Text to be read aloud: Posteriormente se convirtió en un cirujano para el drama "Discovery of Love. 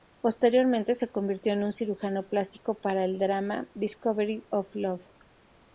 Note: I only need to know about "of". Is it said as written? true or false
true